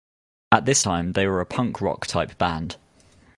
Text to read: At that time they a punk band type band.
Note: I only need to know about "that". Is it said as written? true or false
false